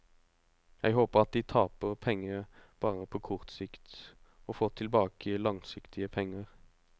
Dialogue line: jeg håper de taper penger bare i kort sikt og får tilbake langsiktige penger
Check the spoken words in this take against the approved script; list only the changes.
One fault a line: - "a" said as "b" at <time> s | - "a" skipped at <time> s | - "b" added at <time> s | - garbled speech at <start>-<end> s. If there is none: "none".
- "at" added at 1.2 s
- "i" said as "på" at 3.0 s